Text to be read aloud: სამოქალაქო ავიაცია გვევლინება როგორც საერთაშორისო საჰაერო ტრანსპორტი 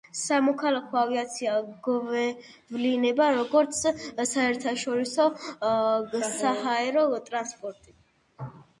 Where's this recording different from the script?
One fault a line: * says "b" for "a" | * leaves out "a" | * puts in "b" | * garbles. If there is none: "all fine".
all fine